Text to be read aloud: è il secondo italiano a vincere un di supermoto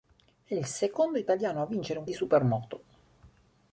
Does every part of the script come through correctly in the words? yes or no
yes